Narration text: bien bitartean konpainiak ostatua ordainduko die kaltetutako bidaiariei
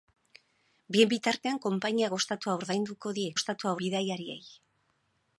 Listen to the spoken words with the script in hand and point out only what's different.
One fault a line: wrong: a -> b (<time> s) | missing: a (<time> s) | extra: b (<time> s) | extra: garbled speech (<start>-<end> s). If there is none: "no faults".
wrong: kaltetutako -> ostatua (3.3 s)